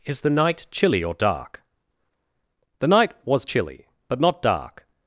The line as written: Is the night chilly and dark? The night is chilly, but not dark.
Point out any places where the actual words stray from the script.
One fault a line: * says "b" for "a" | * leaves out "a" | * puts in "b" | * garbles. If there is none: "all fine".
* says "or" for "and"
* says "was" for "is"